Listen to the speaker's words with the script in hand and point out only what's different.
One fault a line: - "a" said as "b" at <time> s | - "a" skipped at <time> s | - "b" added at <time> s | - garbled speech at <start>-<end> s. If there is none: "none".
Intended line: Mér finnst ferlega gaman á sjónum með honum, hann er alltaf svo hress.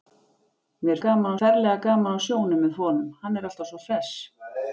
- "finnst" said as "gaman" at 1.1 s